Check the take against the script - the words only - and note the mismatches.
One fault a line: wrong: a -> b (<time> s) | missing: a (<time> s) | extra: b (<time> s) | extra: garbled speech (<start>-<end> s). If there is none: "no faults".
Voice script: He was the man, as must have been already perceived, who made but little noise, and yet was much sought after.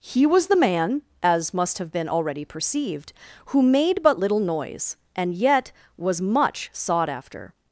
no faults